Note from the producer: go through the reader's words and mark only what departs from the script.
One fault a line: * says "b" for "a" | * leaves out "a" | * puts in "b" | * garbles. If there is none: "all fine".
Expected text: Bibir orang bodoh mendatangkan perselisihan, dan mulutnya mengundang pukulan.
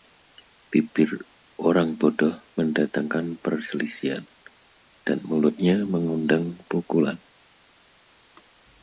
all fine